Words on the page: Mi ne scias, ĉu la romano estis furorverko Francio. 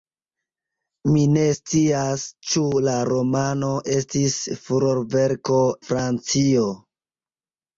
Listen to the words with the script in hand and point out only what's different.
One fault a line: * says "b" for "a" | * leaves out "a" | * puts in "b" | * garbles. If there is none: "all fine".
all fine